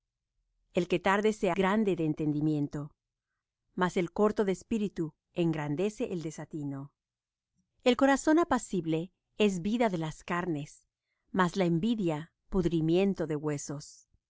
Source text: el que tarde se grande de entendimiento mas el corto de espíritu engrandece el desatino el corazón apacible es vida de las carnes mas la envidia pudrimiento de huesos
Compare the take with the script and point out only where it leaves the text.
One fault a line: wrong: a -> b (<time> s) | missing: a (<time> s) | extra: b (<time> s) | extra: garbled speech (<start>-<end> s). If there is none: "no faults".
no faults